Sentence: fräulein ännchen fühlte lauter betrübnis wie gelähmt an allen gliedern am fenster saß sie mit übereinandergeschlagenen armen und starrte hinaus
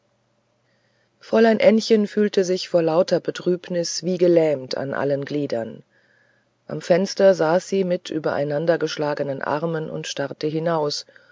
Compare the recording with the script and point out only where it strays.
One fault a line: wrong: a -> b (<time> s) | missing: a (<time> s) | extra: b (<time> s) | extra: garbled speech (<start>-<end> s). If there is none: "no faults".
extra: sich vor (2.4 s)